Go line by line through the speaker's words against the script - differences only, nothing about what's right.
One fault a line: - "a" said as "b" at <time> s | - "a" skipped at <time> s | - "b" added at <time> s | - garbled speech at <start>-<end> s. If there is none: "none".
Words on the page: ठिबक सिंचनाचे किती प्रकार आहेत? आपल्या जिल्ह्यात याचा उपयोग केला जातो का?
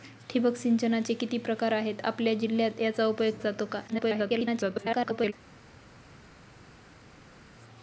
- "केला" skipped at 3.3 s
- garbled speech at 3.9-5.3 s